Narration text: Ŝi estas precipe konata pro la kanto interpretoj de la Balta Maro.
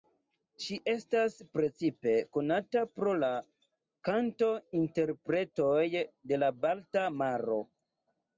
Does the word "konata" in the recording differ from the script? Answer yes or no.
no